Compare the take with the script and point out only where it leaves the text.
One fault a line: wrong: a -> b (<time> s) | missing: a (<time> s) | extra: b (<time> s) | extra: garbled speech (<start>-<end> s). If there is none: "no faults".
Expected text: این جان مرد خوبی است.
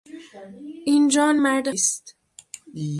missing: خوبی (1.7 s)